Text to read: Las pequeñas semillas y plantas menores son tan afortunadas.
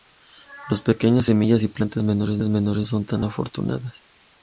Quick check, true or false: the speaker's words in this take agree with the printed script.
true